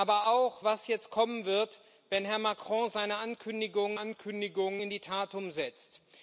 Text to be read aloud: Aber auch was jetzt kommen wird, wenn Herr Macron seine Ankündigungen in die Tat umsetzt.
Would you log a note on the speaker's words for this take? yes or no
yes